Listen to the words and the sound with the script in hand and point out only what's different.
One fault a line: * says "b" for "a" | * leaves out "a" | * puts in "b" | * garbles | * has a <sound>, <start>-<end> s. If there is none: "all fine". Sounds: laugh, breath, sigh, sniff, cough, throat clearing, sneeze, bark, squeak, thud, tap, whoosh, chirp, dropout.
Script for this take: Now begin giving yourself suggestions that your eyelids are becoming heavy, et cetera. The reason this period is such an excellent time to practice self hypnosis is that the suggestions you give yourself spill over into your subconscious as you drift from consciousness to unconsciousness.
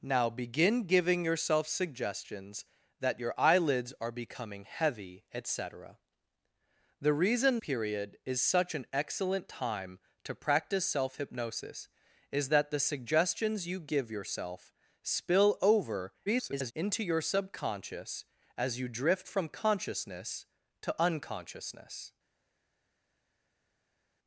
* leaves out "this"
* garbles